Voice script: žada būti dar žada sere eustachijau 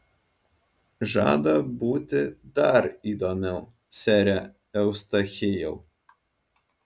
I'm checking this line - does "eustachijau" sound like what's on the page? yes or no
yes